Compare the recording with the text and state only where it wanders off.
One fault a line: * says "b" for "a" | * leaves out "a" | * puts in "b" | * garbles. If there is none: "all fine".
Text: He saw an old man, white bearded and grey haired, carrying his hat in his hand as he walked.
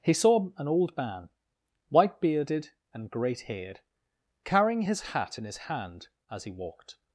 * says "great" for "grey"